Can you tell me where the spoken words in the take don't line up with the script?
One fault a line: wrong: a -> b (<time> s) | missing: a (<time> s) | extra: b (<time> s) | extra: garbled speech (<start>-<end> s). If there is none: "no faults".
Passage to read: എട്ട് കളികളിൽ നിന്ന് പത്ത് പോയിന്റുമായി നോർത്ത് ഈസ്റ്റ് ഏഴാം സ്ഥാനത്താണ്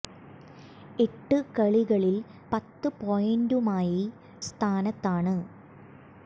missing: നിന്ന് (2.1 s)
missing: നോർത്ത് ഈസ്റ്റ് ഏഴാം (4.0 s)